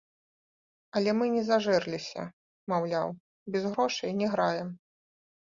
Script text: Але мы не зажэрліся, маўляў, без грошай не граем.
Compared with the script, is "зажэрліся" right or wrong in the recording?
right